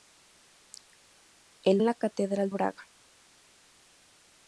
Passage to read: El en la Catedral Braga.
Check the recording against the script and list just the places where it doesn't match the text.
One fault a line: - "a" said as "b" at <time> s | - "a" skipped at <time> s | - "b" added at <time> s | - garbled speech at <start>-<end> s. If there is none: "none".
none